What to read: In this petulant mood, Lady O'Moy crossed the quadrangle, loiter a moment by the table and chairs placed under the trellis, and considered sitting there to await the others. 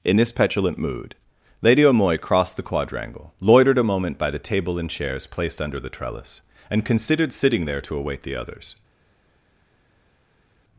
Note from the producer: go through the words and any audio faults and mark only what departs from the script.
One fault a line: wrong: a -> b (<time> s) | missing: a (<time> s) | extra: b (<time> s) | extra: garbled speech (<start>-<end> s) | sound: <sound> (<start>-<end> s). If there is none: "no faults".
wrong: loiter -> loitered (3.4 s)